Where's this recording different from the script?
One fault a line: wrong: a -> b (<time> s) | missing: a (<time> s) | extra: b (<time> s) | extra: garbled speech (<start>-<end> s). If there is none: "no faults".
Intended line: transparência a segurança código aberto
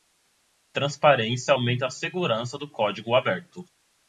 extra: aumenta (1.5 s)
extra: do (2.5 s)